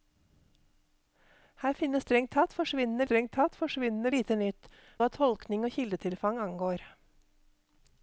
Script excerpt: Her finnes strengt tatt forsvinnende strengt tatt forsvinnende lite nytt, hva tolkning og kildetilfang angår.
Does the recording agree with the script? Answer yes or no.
yes